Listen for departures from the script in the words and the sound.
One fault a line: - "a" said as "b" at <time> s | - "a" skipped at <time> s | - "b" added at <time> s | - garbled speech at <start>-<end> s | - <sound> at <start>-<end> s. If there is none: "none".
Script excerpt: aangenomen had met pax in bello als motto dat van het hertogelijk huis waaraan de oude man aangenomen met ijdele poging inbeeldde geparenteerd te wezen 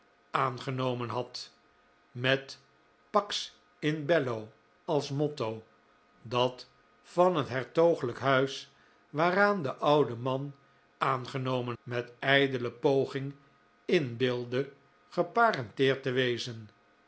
none